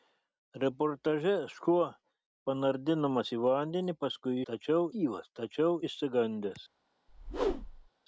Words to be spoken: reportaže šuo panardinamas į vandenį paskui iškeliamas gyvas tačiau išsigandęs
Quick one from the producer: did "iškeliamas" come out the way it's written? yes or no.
no